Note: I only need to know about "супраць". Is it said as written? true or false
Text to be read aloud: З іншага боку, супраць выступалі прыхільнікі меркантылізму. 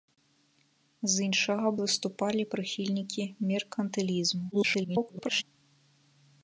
false